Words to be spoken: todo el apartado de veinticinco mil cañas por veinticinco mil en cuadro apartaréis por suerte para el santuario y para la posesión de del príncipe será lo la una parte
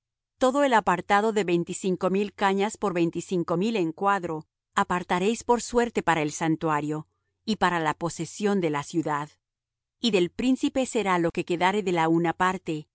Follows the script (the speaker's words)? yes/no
no